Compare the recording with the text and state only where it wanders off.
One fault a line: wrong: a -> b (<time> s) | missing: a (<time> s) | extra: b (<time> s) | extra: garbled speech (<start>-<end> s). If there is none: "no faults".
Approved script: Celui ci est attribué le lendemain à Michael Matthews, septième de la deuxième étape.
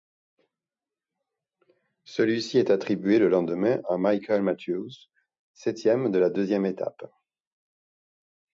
no faults